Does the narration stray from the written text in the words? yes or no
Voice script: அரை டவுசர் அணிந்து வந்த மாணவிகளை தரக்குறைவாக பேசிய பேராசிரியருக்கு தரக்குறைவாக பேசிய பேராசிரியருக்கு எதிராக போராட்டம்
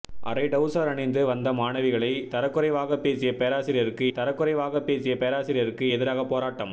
no